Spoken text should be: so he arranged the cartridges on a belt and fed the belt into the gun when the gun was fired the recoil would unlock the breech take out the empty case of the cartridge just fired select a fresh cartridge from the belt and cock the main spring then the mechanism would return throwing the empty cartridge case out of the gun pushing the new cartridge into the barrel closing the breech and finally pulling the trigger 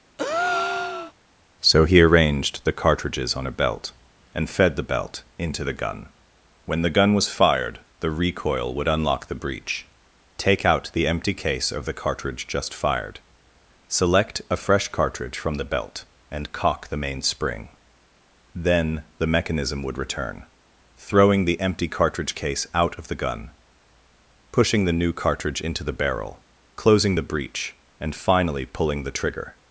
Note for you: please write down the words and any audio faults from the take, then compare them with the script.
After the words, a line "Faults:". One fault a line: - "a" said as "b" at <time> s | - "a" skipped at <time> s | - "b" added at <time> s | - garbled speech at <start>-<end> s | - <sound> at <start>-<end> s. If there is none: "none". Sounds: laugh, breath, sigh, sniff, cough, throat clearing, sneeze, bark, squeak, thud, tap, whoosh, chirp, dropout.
so he arranged the cartridges on a belt and fed the belt into the gun when the gun was fired the recoil would unlock the breech take out the empty case of the cartridge just fired select a fresh cartridge from the belt and cock the main spring then the mechanism would return throwing the empty cartridge case out of the gun pushing the new cartridge into the barrel closing the breech and finally pulling the trigger
Faults:
- breath at 0.2-1.1 s